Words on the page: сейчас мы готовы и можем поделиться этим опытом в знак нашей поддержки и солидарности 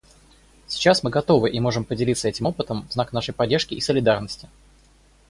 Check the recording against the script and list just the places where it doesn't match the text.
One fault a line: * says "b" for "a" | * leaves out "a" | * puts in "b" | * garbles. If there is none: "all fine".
all fine